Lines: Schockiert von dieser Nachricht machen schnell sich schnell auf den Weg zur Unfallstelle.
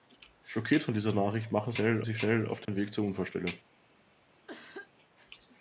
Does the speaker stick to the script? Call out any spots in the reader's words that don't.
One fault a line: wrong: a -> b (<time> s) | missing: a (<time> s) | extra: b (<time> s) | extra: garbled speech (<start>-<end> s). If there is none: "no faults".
no faults